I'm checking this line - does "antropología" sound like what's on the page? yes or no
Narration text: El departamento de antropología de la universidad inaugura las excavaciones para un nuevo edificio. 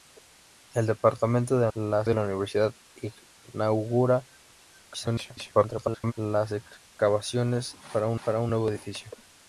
no